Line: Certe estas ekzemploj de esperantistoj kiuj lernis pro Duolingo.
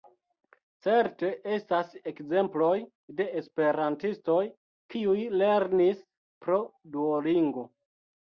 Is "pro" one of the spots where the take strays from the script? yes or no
no